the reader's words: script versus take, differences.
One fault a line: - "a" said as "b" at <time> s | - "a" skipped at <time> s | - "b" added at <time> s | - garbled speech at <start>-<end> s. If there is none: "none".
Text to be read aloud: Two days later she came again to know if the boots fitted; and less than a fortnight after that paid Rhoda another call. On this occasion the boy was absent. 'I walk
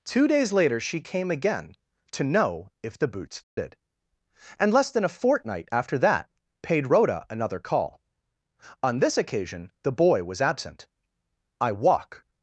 none